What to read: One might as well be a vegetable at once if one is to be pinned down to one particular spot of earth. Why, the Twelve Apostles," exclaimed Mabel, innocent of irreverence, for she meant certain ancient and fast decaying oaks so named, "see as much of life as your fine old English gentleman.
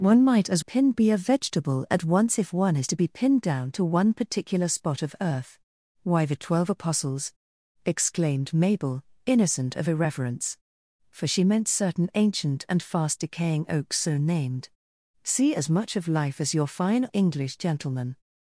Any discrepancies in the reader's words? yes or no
yes